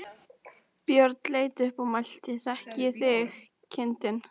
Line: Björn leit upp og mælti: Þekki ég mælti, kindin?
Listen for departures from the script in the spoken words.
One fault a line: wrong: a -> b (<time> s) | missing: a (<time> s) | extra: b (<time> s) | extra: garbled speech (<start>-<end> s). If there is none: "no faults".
wrong: mælti -> þig (3.0 s)